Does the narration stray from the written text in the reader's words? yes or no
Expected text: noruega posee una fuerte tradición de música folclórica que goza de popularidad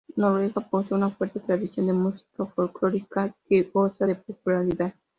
no